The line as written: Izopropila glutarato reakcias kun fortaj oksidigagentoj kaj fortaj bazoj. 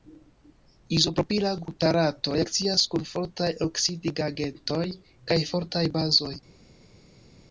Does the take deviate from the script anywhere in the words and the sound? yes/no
no